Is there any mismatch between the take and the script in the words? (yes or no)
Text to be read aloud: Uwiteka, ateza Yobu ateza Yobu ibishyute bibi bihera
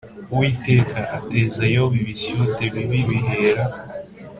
yes